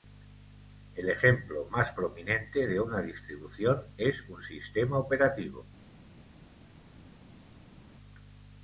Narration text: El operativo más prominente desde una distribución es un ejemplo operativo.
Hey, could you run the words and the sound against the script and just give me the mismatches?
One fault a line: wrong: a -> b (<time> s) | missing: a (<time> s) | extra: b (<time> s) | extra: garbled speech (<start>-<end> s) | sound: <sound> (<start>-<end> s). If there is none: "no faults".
wrong: operativo -> ejemplo (1.1 s)
wrong: desde -> de (2.7 s)
wrong: ejemplo -> sistema (4.4 s)